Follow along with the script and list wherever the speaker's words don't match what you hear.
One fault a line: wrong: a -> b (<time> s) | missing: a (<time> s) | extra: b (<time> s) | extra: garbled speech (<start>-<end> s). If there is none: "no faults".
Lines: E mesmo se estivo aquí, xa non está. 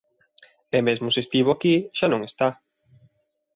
no faults